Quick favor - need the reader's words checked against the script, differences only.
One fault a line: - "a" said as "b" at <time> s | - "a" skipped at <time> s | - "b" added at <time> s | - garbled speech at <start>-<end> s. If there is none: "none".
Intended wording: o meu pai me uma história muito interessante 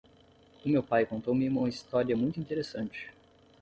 - "contou" added at 1.1 s